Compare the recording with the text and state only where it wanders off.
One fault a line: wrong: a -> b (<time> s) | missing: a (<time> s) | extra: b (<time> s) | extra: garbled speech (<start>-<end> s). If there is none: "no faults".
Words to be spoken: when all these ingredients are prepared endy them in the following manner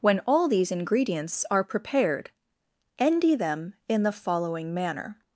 no faults